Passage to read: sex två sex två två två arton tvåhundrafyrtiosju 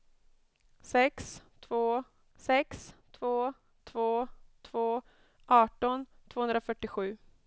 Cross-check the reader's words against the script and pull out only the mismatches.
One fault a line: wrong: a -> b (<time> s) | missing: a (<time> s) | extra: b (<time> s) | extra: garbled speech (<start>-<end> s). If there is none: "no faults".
no faults